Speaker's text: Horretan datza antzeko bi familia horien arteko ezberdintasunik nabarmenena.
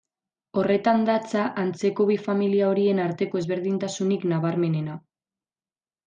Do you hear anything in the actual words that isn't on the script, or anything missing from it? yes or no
no